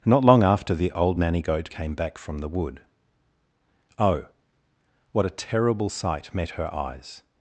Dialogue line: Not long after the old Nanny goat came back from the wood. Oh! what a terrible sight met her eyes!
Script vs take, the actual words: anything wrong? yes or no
no